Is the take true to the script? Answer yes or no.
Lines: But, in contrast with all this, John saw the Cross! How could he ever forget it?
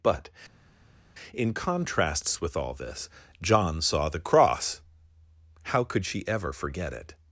no